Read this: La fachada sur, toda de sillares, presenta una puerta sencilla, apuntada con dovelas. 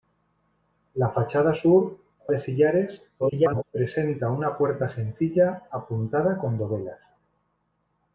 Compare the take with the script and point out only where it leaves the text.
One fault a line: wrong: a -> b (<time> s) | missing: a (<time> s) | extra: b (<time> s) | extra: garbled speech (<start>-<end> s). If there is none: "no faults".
missing: toda (2.0 s)
extra: garbled speech (3.2-3.6 s)